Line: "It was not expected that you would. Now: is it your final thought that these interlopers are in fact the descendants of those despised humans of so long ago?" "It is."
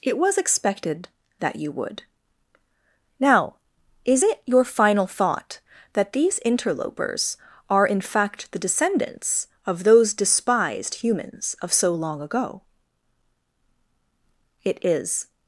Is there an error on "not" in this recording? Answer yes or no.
yes